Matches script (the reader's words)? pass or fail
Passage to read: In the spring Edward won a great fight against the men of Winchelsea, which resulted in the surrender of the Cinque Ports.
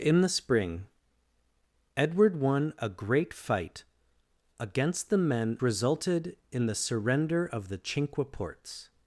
fail